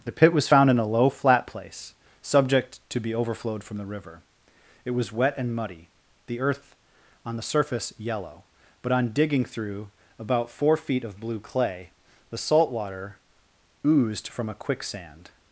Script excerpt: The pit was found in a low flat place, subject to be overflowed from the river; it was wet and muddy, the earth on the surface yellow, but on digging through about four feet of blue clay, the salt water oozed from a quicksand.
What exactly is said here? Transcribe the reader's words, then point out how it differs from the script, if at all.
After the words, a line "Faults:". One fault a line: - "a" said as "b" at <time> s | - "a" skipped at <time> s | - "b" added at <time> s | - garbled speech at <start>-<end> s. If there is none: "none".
The pit was found in a low flat place, subject to be overflowed from the river; it was wet and muddy, the earth on the surface yellow, but on digging through about four feet of blue clay, the salt water oozed from a quicksand.
Faults:
none